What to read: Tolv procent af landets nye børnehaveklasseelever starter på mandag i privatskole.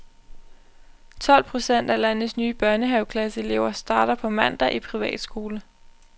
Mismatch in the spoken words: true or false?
false